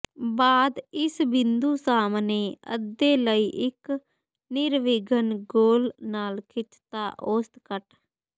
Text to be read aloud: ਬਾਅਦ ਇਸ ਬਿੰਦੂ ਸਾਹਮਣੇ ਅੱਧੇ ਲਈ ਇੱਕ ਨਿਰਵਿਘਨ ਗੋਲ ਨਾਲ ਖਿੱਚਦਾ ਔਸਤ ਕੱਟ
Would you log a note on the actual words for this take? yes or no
no